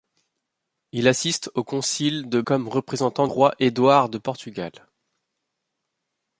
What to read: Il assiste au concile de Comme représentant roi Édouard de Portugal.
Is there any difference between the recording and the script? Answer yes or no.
no